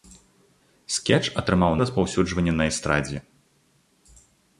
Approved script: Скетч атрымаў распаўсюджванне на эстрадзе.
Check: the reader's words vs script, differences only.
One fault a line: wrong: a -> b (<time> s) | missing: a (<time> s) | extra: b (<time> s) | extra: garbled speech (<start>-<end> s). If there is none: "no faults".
no faults